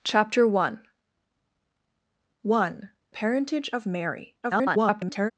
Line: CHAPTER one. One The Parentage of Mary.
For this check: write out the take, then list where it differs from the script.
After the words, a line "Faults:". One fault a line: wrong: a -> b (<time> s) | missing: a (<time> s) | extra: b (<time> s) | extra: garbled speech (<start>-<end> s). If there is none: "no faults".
CHAPTER one. One Parentage of Mary. [garbled]
Faults:
missing: The (2.9 s)
extra: garbled speech (4.4-5.3 s)